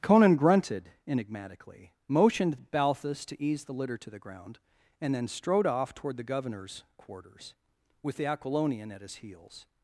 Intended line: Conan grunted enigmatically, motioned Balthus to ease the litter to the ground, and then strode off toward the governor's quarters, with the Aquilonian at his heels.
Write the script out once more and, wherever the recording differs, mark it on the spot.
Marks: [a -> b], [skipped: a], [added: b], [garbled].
Conan grunted enigmatically, motioned Balthus to ease the litter to the ground, and then strode off toward the governor's quarters, with the Aquilonian at his heels.